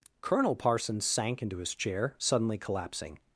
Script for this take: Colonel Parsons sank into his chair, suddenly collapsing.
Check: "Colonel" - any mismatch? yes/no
no